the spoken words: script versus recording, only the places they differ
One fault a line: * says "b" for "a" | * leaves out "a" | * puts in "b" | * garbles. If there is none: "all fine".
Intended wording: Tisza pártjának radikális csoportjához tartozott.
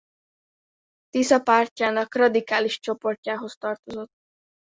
all fine